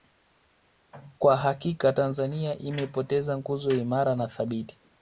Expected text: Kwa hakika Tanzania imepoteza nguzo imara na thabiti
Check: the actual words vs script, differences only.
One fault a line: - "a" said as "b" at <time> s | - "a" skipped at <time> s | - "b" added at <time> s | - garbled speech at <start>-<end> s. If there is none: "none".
none